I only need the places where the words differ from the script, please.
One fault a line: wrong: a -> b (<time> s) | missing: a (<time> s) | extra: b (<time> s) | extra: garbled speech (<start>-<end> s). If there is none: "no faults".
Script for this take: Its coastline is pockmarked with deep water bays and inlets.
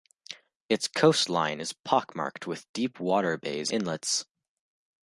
missing: and (3.7 s)